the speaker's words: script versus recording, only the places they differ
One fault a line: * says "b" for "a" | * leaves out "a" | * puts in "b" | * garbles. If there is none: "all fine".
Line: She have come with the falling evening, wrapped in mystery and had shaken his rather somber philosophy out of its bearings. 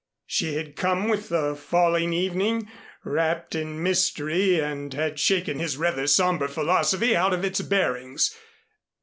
* says "had" for "have"